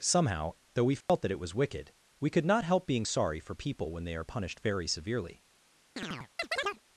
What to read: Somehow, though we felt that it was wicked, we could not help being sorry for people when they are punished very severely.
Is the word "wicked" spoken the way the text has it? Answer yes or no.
yes